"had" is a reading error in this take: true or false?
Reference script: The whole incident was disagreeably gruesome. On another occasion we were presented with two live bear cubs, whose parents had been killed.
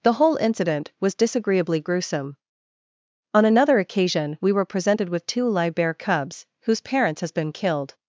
true